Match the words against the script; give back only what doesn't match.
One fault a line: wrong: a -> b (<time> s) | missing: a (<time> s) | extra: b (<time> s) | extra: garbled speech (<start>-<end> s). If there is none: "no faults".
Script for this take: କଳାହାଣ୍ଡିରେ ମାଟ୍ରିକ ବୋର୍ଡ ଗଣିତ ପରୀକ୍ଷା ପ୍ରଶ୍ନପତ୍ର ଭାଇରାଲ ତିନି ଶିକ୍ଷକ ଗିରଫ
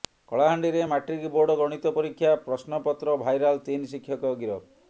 no faults